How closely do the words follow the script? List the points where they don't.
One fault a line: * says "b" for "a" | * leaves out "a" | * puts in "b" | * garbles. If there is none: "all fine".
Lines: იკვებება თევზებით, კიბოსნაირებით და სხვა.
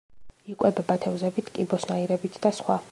all fine